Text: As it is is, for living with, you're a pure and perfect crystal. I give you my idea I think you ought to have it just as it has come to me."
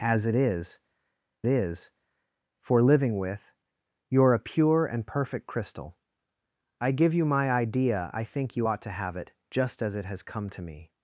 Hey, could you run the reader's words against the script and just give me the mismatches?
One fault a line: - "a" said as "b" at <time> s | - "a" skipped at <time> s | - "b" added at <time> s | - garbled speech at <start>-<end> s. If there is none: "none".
none